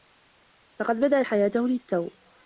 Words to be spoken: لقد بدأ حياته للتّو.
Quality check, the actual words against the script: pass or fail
pass